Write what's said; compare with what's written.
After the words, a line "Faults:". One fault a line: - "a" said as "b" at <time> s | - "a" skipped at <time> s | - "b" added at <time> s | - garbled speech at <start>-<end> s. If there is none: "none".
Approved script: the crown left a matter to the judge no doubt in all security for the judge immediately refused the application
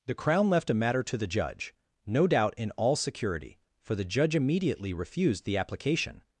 the crown left a matter to the judge no doubt in all security for the judge immediately refused the application
Faults:
none